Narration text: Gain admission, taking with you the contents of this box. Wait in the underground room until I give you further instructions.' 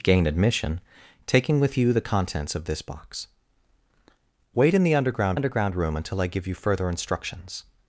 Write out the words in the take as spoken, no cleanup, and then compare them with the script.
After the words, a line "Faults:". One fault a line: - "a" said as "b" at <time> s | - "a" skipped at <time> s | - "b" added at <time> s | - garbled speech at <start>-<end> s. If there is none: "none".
Gain admission, taking with you the contents of this box. Wait in the underground underground room until I give you further instructions.'
Faults:
- "underground" added at 5.3 s